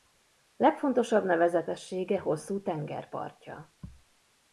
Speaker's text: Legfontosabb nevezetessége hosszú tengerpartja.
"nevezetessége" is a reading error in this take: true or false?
false